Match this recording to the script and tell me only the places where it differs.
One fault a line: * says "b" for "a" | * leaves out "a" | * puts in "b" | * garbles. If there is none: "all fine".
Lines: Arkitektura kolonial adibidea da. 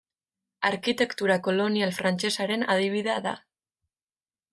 * puts in "frantsesaren"